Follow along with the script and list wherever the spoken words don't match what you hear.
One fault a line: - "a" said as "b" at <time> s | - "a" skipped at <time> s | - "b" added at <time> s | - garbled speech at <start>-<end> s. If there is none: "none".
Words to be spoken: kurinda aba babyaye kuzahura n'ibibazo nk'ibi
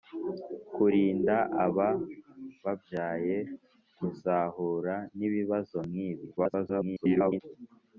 - garbled speech at 6.4-7.4 s